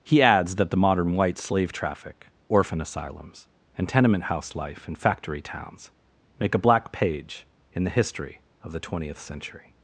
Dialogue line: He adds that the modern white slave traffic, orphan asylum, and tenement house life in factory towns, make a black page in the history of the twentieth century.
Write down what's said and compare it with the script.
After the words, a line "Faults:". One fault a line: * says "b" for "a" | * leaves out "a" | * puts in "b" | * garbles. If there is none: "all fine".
He adds that the modern white slave traffic, orphan asylums, and tenement house life in factory towns, make a black page in the history of the twentieth century.
Faults:
* says "asylums" for "asylum"